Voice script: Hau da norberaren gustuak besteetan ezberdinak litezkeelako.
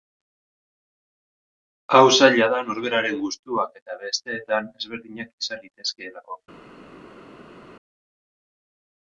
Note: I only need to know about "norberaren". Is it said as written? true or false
true